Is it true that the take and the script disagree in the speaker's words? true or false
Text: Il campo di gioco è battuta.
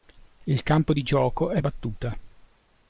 false